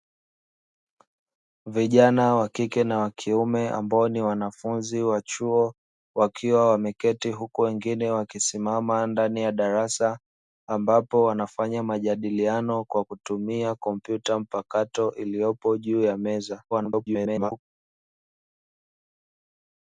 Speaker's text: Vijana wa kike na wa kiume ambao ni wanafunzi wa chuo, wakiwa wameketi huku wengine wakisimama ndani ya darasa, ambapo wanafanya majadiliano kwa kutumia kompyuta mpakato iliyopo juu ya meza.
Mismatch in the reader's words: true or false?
true